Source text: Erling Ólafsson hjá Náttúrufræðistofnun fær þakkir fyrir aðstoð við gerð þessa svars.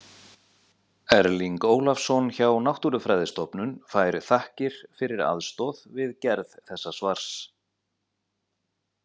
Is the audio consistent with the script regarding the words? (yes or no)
yes